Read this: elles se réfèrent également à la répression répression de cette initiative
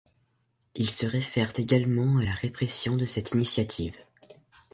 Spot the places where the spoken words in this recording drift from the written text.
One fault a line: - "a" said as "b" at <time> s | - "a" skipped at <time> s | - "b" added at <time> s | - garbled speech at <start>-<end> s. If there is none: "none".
- "elles" said as "ils" at 0.7 s
- "répression" skipped at 3.0 s